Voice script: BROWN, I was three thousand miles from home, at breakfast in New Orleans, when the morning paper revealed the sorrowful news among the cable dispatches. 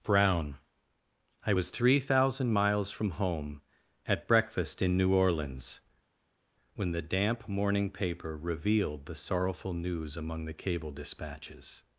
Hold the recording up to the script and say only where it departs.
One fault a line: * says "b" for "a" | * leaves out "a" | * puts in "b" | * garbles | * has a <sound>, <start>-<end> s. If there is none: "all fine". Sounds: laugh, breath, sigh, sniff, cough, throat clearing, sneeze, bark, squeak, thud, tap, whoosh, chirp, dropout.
* puts in "damp"